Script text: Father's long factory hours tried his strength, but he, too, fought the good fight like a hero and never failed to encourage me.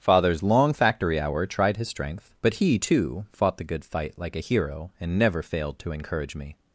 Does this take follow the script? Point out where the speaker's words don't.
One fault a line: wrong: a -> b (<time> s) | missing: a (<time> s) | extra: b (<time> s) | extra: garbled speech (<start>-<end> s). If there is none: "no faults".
wrong: hours -> hour (1.2 s)